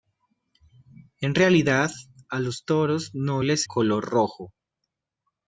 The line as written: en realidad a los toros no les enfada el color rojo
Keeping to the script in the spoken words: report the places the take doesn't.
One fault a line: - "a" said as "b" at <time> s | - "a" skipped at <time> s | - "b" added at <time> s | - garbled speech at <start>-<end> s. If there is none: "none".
- "enfada el" skipped at 3.7 s